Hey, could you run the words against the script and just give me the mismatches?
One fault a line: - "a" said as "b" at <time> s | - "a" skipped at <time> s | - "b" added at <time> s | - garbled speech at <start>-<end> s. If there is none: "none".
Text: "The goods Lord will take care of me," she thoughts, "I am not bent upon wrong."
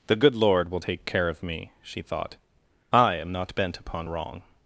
- "goods" said as "good" at 0.1 s
- "thoughts" said as "thought" at 2.0 s